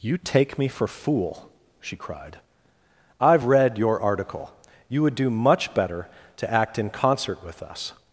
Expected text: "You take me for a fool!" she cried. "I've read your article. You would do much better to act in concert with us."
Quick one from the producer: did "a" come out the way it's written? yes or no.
no